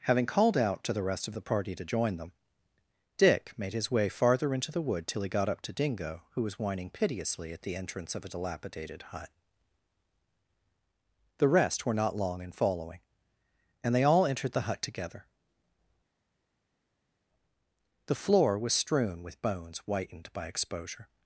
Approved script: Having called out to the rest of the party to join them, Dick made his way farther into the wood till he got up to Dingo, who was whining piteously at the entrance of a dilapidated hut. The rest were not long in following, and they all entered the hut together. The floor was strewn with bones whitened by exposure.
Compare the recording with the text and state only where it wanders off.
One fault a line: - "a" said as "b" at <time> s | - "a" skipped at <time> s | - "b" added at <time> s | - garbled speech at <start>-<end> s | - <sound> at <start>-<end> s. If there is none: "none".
none